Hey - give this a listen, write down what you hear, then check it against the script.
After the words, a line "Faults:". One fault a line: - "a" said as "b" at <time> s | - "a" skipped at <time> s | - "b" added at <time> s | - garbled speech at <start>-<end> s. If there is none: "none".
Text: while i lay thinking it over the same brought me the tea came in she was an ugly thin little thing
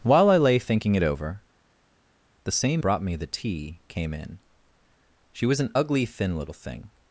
while i lay thinking it over the same brought me the tea came in she was an ugly thin little thing
Faults:
none